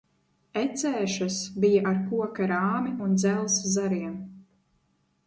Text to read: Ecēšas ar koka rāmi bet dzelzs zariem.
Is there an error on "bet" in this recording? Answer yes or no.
yes